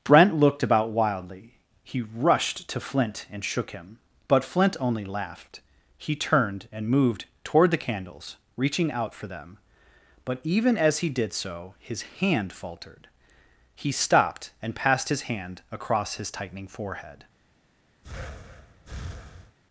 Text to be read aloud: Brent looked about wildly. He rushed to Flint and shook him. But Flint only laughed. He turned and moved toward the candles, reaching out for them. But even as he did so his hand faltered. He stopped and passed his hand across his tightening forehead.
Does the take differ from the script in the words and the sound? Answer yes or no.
yes